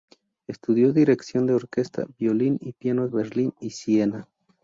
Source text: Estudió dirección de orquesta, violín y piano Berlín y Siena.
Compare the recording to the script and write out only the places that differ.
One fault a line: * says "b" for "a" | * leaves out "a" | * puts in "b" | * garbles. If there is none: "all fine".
all fine